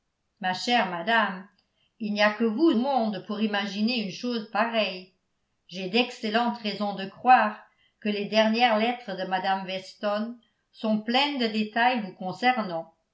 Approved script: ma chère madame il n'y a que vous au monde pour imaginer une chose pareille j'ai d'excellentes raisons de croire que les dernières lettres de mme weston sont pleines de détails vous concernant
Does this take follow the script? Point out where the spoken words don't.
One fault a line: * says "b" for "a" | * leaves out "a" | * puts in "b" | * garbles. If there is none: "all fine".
* leaves out "au"